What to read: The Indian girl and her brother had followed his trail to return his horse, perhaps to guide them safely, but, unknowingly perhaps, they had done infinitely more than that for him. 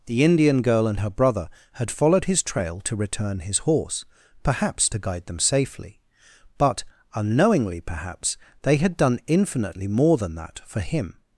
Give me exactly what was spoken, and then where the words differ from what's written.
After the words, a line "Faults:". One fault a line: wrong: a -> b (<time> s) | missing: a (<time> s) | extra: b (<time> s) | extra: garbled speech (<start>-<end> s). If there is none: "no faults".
The Indian girl and her brother had followed his trail to return his horse, perhaps to guide them safely, but, unknowingly perhaps, they had done infinitely more than that for him.
Faults:
no faults